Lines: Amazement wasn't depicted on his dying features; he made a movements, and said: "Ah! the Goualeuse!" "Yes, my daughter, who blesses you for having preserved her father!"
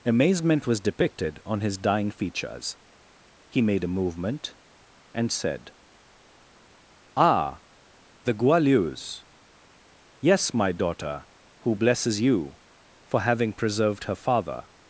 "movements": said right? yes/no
no